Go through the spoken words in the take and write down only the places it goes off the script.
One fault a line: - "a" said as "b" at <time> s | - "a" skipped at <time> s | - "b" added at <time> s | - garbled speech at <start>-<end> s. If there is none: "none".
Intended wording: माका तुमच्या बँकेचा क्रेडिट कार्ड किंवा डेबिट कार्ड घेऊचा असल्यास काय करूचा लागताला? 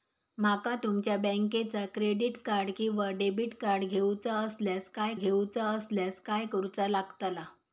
- "घेऊचा असल्यास काय" added at 5.1 s